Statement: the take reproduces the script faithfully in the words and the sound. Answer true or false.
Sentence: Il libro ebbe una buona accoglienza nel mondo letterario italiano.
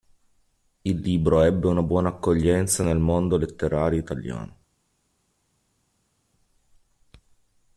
true